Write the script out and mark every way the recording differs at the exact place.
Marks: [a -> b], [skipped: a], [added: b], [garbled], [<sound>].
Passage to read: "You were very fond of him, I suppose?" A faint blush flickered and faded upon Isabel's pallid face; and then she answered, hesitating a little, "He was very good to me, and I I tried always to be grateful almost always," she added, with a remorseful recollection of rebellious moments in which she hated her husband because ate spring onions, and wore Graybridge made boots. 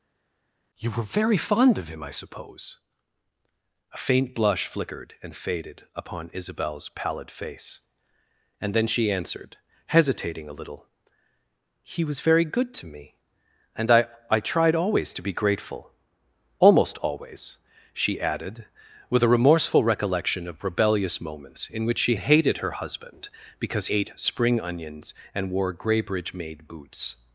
"You were very fond of him, I suppose?" A faint blush flickered and faded upon Isabel's pallid face; and then she answered, hesitating a little, "He was very good to me, and I I tried always to be grateful almost always," she added, with a remorseful recollection of rebellious moments in which she hated her husband because ate spring onions, and wore Graybridge made boots.